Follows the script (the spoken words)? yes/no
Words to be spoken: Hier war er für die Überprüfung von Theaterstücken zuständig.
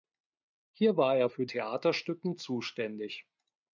no